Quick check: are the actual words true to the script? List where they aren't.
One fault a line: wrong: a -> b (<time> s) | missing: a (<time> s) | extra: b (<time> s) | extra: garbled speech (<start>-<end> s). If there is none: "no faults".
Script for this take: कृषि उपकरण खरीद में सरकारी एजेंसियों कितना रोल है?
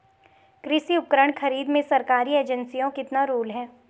no faults